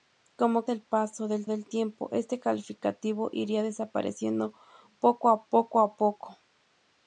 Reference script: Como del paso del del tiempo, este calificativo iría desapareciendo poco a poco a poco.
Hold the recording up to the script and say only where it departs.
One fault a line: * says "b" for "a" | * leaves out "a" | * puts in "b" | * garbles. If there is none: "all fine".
all fine